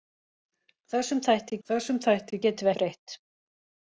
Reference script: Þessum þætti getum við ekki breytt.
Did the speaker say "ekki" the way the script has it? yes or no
no